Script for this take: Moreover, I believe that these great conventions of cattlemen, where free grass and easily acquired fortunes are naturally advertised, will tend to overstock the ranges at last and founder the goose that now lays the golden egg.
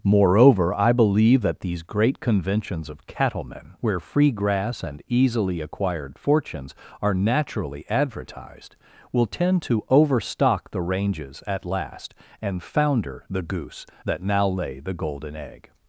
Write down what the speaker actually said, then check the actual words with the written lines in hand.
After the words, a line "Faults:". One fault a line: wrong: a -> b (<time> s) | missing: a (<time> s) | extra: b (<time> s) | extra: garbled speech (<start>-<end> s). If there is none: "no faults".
Moreover, I believe that these great conventions of cattlemen, where free grass and easily acquired fortunes are naturally advertised, will tend to overstock the ranges at last and founder the goose that now lay the golden egg.
Faults:
wrong: lays -> lay (14.5 s)